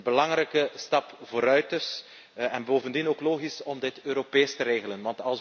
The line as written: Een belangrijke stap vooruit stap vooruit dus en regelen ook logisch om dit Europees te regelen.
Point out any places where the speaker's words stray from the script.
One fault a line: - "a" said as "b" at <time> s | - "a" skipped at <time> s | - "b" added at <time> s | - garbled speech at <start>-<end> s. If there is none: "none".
- "stap vooruit" skipped at 1.7 s
- "regelen" said as "bovendien" at 2.6 s